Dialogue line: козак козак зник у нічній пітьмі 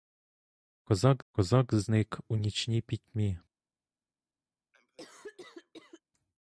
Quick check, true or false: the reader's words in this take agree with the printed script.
true